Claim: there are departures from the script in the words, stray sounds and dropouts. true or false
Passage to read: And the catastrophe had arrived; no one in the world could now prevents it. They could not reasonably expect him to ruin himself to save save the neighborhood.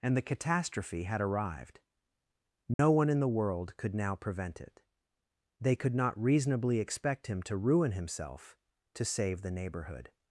true